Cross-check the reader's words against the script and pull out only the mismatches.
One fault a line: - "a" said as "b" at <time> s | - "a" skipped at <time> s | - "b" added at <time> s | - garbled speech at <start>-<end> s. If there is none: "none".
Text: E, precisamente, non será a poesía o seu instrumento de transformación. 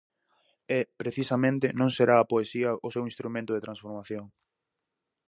none